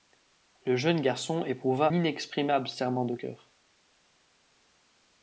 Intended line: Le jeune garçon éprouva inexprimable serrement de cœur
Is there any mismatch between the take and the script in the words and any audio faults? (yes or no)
no